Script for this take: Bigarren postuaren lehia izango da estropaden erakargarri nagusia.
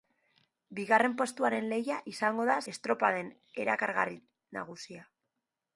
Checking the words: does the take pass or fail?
pass